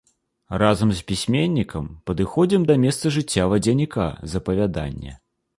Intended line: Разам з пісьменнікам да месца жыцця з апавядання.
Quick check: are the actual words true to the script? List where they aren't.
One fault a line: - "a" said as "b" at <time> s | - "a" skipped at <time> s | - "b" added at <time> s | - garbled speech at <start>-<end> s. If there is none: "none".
- "падыходзім" added at 2.1 s
- "вадзяніка" added at 3.5 s